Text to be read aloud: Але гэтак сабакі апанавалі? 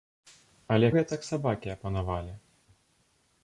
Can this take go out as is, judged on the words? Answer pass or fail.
pass